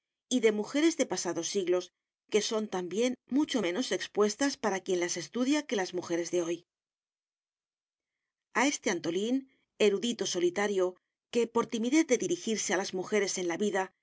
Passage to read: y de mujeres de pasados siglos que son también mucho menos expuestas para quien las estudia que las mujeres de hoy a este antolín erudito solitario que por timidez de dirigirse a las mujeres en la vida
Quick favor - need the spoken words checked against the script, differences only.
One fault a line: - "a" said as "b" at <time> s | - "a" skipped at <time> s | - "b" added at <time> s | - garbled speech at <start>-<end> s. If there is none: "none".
none